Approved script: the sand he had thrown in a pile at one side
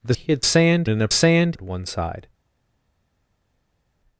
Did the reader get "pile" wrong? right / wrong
wrong